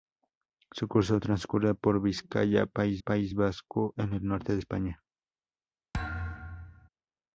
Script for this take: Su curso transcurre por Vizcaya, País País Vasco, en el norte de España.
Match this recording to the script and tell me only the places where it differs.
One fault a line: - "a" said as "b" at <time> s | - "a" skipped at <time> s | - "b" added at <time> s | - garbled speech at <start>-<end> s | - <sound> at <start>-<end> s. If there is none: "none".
- thud at 5.9-6.9 s